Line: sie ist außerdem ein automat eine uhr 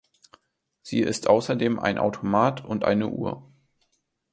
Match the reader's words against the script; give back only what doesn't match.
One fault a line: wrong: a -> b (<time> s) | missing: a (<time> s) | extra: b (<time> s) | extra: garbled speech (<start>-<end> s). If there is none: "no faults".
extra: und (2.6 s)